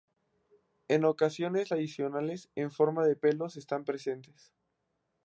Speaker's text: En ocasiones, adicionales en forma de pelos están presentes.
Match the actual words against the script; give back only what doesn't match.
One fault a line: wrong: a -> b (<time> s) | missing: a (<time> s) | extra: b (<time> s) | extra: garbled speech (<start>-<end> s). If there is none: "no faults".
no faults